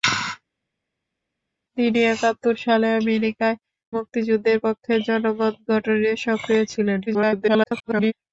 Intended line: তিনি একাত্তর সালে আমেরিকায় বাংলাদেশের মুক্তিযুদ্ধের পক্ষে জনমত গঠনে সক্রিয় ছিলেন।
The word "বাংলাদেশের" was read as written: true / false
false